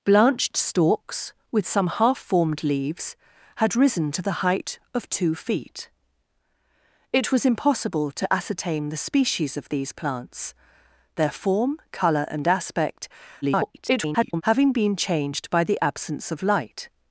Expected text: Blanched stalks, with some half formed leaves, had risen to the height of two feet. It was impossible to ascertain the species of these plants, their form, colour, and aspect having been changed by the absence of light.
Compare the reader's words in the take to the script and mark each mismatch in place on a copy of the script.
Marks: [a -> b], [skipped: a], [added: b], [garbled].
Blanched stalks, with some half formed leaves, had risen to the height of two feet. It was impossible to ascertain the species of these plants, their form, colour, and aspect [garbled] having been changed by the absence of light.